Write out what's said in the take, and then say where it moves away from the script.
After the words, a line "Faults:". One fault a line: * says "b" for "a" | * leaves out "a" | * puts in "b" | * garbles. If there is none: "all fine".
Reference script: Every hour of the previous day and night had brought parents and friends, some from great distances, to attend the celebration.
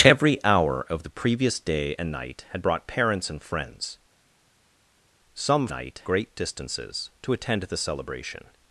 Every hour of the previous day and night had brought parents and friends, some night great distances, to attend the celebration.
Faults:
* says "night" for "from"